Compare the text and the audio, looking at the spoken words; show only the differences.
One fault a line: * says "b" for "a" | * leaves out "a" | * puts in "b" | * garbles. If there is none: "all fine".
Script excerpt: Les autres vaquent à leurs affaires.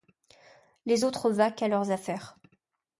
all fine